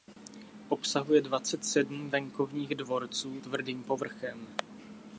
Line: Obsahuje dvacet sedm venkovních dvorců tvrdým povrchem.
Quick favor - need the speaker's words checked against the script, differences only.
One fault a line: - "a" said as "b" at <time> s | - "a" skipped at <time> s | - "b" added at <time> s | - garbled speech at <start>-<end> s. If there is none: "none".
none